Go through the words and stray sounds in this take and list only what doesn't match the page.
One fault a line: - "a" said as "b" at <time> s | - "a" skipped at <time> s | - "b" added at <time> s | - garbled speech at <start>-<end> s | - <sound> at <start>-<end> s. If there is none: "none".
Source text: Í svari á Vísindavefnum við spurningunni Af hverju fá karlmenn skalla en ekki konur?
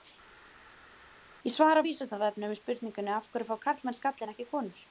none